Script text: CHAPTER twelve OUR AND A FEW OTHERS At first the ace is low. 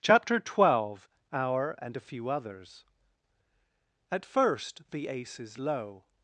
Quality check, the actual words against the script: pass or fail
pass